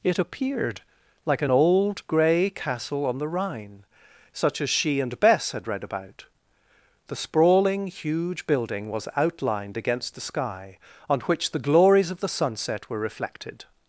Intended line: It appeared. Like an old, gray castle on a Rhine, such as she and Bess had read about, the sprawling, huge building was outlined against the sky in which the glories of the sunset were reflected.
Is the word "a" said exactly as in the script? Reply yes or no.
no